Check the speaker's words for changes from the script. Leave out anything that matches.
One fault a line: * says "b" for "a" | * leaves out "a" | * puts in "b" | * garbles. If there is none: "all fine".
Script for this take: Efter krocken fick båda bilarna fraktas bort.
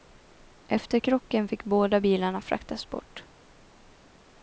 all fine